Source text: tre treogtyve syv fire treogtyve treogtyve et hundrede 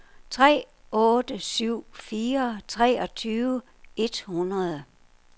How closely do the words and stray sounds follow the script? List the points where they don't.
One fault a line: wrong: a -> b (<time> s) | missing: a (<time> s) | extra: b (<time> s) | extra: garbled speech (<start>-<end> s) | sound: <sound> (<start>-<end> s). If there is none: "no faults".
wrong: treogtyve -> otte (0.9 s)
missing: treogtyve (3.6 s)